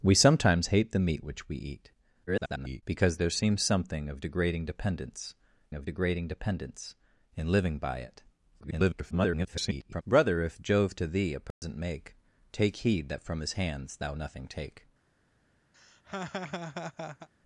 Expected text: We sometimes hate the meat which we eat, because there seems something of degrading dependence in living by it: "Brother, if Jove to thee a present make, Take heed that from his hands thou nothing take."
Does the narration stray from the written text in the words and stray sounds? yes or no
yes